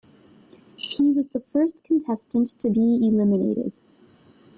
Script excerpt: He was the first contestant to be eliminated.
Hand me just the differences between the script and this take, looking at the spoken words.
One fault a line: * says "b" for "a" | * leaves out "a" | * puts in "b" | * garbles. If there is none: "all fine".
all fine